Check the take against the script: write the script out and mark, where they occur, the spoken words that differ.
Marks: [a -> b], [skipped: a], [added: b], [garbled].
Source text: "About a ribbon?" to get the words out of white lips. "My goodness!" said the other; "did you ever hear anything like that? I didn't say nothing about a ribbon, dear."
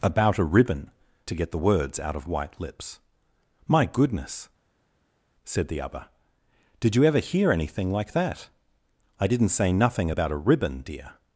"About a ribbon?" to get the words out of white lips. "My goodness!" said the other; "did you ever hear anything like that? I didn't say nothing about a ribbon, dear."